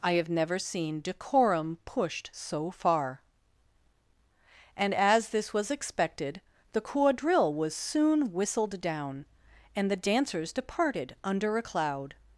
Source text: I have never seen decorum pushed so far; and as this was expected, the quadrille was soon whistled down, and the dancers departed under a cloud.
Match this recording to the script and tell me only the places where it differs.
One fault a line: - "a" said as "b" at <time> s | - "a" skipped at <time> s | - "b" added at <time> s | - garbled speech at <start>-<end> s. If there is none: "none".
none